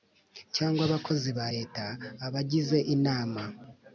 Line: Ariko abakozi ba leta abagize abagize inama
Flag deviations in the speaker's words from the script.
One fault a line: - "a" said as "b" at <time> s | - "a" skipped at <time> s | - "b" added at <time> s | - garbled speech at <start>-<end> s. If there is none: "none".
- "Ariko" said as "Cyangwa" at 0.6 s
- "abagize" skipped at 2.8 s